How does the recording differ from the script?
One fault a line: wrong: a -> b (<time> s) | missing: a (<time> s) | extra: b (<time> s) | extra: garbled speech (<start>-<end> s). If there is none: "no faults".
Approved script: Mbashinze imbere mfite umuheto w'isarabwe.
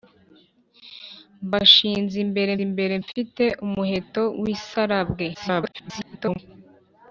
extra: imbere (2.7 s)
extra: garbled speech (5.3-6.4 s)